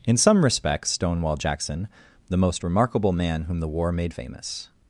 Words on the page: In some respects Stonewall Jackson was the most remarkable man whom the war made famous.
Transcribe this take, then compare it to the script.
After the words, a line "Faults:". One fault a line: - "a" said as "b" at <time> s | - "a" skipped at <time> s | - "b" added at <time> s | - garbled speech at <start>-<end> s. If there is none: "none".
In some respects Stonewall Jackson the most remarkable man whom the war made famous.
Faults:
- "was" skipped at 1.9 s